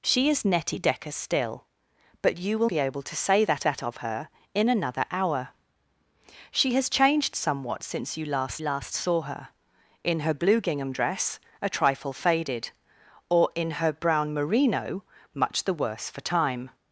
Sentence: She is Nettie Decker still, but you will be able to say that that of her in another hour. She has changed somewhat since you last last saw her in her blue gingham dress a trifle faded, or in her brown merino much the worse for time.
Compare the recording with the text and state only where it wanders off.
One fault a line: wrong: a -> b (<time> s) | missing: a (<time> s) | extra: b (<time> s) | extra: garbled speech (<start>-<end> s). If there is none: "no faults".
no faults